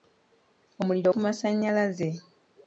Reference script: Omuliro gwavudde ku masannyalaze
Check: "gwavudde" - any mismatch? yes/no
yes